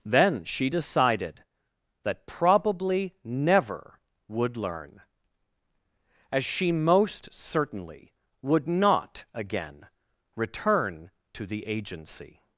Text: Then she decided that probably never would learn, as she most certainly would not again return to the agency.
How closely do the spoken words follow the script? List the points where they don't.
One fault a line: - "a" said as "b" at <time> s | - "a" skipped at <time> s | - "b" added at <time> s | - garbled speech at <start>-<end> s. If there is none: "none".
none